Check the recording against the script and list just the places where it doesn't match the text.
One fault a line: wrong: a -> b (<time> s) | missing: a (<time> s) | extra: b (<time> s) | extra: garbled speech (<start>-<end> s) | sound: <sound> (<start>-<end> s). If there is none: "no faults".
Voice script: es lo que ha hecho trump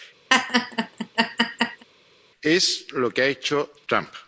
sound: laugh (0.3-1.8 s)